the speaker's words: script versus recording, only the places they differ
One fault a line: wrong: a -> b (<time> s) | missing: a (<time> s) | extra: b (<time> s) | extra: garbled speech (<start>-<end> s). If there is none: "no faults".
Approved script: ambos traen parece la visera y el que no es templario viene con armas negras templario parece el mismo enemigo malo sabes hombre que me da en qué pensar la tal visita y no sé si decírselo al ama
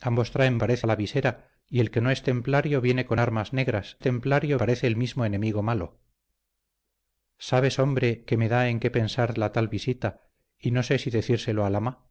no faults